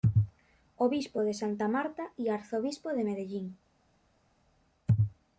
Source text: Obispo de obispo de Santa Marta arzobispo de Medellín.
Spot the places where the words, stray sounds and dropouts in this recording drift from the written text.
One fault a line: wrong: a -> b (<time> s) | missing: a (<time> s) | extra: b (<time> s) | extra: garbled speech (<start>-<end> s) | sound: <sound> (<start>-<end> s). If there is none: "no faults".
missing: obispo de (1.3 s)
extra: y (2.2 s)